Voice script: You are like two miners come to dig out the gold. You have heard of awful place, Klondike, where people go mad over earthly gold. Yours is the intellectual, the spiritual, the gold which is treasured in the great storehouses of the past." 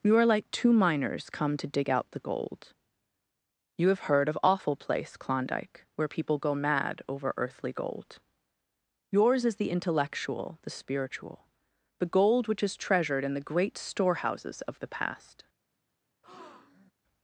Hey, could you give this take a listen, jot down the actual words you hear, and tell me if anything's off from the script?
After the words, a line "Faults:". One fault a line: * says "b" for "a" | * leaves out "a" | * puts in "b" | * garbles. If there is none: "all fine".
You are like two miners come to dig out the gold. You have heard of awful place, Klondike, where people go mad over earthly gold. Yours is the intellectual, the spiritual, the gold which is treasured in the great storehouses of the past."
Faults:
all fine